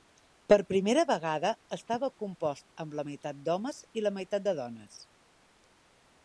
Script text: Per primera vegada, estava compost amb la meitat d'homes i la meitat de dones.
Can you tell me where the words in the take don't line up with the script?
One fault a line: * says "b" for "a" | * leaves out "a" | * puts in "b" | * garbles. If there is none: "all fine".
all fine